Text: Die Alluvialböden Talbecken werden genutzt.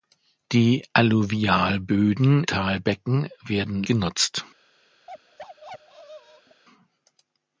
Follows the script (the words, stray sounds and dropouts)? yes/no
no